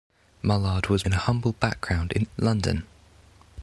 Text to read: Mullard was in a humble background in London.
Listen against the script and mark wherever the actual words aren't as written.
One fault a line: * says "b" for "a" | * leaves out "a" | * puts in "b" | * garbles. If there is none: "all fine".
all fine